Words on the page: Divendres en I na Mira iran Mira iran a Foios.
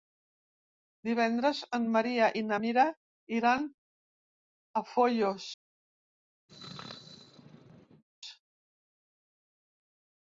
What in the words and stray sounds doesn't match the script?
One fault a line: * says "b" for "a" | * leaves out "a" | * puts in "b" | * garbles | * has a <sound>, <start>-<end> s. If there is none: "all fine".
* puts in "Maria"
* leaves out "Mira iran"
* has a sneeze, 6.5-8.0 s